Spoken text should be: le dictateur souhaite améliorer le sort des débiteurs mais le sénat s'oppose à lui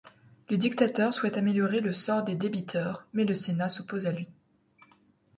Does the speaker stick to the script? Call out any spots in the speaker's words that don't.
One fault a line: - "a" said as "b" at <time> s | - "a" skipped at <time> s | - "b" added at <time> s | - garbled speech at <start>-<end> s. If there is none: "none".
none